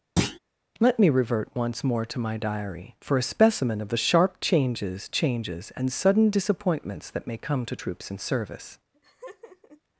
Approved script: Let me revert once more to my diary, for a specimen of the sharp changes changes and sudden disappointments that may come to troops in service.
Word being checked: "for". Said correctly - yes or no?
yes